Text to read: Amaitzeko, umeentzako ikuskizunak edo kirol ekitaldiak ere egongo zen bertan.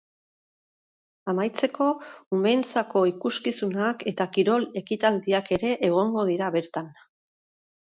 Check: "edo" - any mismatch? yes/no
yes